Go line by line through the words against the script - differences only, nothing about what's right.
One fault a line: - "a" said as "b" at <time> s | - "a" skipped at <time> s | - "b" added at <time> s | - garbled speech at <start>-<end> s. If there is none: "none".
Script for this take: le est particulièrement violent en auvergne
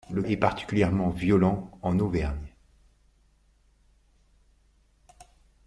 none